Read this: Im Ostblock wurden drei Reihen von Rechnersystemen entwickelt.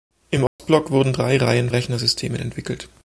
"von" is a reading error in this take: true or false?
true